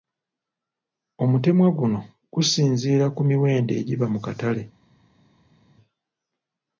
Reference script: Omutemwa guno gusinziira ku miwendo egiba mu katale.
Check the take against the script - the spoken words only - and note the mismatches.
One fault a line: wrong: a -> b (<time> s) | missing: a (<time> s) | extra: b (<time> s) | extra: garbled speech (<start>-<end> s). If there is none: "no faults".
no faults